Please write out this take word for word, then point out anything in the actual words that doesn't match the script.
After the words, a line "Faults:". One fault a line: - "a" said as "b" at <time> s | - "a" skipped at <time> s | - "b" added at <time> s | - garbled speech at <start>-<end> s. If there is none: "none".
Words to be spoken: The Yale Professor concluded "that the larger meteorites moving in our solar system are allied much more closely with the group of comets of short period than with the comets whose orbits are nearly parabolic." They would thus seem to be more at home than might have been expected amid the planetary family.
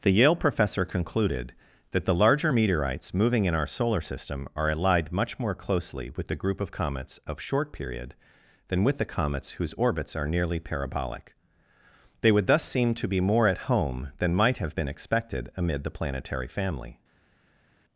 The Yale Professor concluded "that the larger meteorites moving in our solar system are allied much more closely with the group of comets of short period than with the comets whose orbits are nearly parabolic." They would thus seem to be more at home than might have been expected amid the planetary family.
Faults:
none